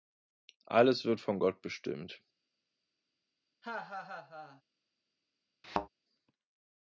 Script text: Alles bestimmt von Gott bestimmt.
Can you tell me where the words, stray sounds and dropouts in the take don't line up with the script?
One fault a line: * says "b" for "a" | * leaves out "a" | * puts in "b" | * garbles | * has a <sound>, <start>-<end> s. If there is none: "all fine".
* says "wird" for "bestimmt"
* has a laugh, 3.6-4.6 s
* has a thud, 5.6-5.9 s